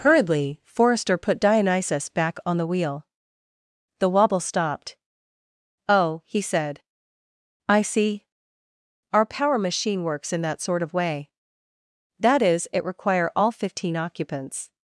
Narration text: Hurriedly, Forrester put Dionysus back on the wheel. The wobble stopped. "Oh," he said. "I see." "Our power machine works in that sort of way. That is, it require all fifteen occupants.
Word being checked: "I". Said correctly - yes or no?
yes